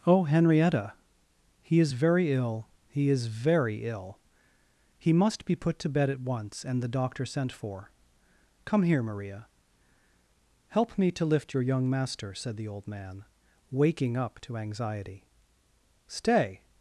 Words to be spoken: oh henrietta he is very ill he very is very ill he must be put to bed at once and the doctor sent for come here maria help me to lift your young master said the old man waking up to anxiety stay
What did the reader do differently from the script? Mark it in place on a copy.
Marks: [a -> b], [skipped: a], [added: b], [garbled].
oh henrietta he is very ill he [skipped: very] is very ill he must be put to bed at once and the doctor sent for come here maria help me to lift your young master said the old man waking up to anxiety stay